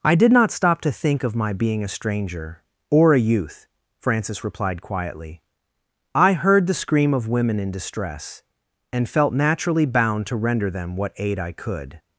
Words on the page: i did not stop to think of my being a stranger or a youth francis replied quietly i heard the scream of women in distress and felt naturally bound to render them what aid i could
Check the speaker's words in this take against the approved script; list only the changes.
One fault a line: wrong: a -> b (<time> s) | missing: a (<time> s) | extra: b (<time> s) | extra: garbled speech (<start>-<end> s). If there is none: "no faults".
no faults